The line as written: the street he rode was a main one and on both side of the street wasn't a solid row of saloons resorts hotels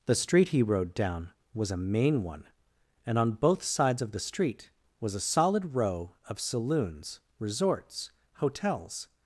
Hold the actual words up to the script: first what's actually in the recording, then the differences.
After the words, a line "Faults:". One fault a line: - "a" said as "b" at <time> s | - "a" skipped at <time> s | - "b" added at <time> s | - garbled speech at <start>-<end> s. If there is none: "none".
the street he rode down was a main one and on both sides of the street was a solid row of saloons resorts hotels
Faults:
- "down" added at 0.9 s
- "side" said as "sides" at 3.6 s
- "wasn't" said as "was" at 5.0 s